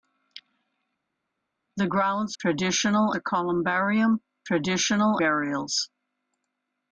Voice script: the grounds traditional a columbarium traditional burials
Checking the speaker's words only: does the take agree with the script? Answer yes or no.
yes